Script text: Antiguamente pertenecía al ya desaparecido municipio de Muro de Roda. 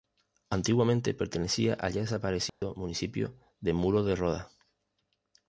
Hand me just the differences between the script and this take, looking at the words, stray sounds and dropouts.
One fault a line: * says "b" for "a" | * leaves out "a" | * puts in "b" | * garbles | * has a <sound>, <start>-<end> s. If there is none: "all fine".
* has a dropout, 2.5-2.6 s